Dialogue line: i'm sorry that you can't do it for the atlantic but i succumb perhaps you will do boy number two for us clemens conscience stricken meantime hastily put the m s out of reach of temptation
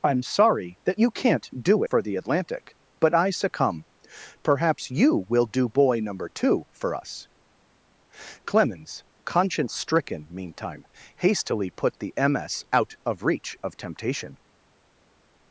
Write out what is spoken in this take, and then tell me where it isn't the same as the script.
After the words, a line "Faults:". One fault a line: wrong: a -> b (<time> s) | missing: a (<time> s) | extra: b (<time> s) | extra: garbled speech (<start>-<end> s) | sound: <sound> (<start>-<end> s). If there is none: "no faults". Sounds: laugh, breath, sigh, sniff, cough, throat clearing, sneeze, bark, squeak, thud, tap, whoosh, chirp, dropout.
i'm sorry that you can't do for the atlantic but i succumb perhaps you will do boy number two for us clemens conscience stricken meantime hastily put the m s out of reach of temptation
Faults:
missing: it (1.8 s)